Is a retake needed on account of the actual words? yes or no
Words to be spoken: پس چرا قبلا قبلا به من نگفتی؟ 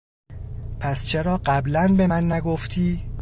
yes